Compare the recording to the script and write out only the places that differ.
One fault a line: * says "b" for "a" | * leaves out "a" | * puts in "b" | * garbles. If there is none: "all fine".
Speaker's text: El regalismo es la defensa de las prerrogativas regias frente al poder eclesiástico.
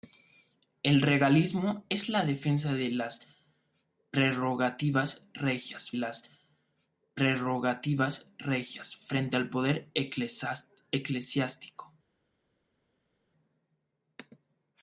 * puts in "las prerrogativas regias"